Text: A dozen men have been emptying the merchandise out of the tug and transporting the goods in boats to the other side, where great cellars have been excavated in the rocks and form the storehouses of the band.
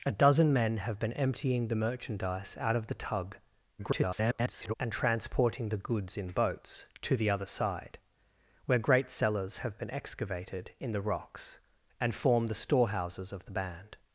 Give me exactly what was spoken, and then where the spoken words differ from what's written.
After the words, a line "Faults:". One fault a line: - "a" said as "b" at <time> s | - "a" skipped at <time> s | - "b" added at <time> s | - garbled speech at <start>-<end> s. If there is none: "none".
A dozen men have been emptying the merchandise out of the tug [garbled] and transporting the goods in boats to the other side, where great cellars have been excavated in the rocks and form the storehouses of the band.
Faults:
- garbled speech at 3.8-4.7 s